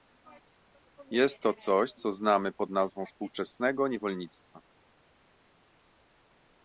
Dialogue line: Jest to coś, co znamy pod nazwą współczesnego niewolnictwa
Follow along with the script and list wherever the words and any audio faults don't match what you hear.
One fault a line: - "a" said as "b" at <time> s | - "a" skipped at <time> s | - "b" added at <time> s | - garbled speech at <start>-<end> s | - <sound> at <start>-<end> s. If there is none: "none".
none